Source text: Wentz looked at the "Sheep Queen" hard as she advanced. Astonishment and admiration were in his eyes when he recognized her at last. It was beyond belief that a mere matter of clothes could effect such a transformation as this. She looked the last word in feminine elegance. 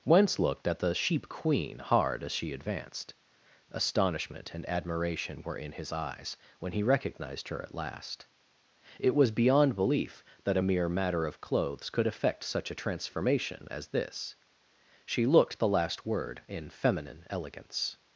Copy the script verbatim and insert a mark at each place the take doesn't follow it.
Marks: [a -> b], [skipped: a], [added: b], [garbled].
Wentz looked at the "Sheep Queen" hard as she advanced. Astonishment and admiration were in his eyes when he recognized her at last. It was beyond belief that a mere matter of clothes could effect such a transformation as this. She looked the last word in feminine elegance.